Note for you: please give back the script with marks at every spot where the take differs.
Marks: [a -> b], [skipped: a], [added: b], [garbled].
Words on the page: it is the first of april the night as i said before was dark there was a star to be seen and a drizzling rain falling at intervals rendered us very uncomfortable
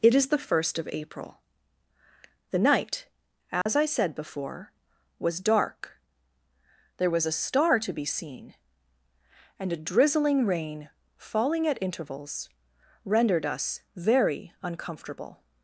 it is the first of april the night as i said before was dark there was a star to be seen and a drizzling rain falling at intervals rendered us very uncomfortable